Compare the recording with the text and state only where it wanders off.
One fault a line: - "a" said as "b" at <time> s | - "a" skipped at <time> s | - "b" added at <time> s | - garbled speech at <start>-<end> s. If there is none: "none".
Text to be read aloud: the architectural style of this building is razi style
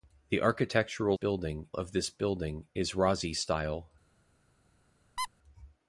- "style" said as "building" at 1.1 s